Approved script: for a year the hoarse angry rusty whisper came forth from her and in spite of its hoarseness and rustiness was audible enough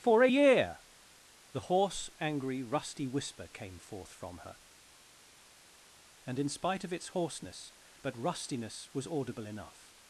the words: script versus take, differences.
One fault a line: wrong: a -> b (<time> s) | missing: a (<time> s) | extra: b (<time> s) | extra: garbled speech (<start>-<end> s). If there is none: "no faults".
wrong: and -> but (8.0 s)